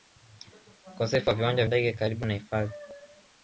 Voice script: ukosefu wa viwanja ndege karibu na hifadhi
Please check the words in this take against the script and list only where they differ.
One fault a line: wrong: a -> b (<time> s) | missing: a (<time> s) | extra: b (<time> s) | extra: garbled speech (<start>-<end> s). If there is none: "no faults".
no faults